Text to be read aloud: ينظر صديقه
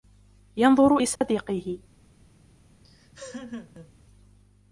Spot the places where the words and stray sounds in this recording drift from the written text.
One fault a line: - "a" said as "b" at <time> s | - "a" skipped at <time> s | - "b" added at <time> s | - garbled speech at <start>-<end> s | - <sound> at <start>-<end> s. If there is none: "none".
- dropout at 1.2-1.2 s
- laugh at 2.8-3.9 s